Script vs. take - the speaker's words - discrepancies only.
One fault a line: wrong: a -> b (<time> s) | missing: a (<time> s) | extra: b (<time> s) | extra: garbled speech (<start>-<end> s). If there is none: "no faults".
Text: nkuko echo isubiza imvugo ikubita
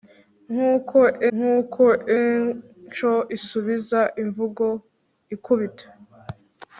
extra: nkuko (1.3 s)